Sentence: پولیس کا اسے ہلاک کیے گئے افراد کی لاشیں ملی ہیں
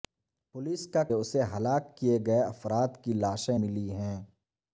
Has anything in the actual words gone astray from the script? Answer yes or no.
no